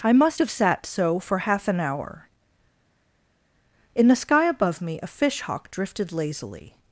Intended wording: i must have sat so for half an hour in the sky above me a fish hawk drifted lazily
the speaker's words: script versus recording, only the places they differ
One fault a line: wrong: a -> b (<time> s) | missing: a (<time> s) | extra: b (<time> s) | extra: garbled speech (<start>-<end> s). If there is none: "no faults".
no faults